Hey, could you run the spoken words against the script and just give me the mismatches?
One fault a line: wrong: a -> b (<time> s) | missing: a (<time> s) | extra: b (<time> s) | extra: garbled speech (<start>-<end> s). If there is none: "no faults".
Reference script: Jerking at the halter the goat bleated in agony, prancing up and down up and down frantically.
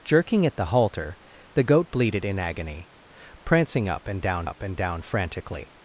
no faults